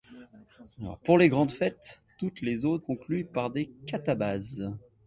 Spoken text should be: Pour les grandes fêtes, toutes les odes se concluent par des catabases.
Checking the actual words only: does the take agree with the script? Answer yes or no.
no